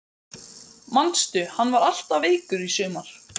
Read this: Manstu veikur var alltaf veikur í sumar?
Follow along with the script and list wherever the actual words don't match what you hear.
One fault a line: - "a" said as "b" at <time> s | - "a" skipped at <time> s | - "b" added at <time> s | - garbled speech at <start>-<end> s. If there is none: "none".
- "veikur" said as "hann" at 1.6 s